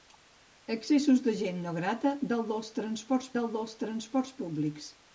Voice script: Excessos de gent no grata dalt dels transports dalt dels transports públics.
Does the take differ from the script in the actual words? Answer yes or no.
no